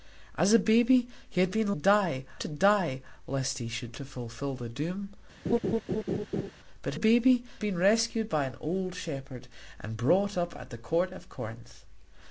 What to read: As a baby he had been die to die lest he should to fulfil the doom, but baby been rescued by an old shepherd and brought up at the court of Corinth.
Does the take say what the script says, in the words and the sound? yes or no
no